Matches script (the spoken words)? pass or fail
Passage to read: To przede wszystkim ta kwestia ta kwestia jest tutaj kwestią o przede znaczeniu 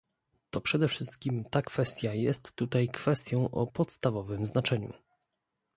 fail